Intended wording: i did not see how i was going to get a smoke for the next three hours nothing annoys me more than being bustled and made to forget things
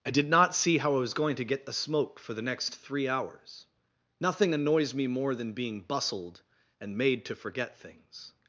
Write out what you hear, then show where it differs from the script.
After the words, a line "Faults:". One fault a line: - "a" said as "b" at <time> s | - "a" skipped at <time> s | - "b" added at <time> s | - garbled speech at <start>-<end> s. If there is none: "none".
i did not see how i was going to get the smoke for the next three hours nothing annoys me more than being bustled and made to forget things
Faults:
- "a" said as "the" at 1.7 s